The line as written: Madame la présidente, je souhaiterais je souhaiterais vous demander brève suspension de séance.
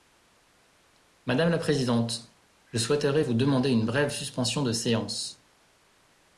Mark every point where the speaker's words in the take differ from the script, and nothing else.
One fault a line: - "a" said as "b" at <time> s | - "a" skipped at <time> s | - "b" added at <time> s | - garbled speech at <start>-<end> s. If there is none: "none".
- "je souhaiterais" skipped at 3.2 s
- "une" added at 3.7 s